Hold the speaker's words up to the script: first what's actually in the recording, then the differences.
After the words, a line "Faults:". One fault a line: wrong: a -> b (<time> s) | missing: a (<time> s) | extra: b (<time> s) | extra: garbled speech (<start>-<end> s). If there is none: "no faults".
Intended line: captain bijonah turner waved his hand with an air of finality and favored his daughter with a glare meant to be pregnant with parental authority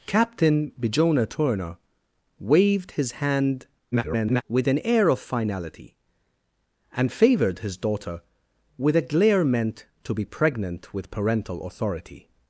captain bijonah turner waved his hand [garbled] with an air of finality and favored his daughter with a glare meant to be pregnant with parental authority
Faults:
extra: garbled speech (3.9-4.4 s)